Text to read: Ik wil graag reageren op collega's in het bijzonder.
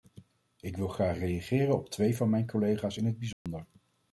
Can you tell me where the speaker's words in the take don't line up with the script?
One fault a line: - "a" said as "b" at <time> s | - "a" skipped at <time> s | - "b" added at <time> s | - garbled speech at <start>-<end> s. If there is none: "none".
- "twee van mijn" added at 1.9 s